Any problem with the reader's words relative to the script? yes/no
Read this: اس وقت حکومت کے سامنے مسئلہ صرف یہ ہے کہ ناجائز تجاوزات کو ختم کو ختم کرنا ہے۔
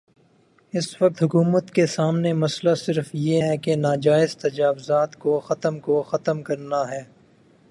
no